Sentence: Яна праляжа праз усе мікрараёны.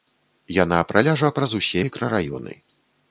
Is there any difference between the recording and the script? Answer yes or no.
no